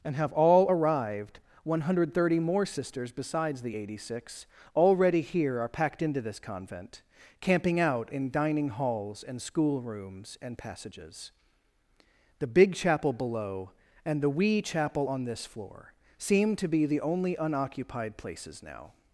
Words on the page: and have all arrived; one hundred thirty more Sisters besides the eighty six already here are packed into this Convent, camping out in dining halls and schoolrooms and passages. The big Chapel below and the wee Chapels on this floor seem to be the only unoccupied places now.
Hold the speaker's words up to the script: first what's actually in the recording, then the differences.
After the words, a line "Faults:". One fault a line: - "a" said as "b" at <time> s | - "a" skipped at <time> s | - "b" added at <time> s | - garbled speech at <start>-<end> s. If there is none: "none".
and have all arrived; one hundred thirty more Sisters besides the eighty six already here are packed into this Convent, camping out in dining halls and schoolrooms and passages. The big Chapel below and the wee Chapel on this floor seem to be the only unoccupied places now.
Faults:
- "Chapels" said as "Chapel" at 14.6 s